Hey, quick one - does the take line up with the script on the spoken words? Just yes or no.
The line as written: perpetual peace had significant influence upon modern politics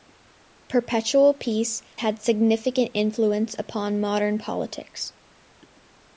yes